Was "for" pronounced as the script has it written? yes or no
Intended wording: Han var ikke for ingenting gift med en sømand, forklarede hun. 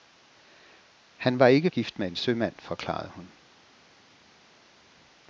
no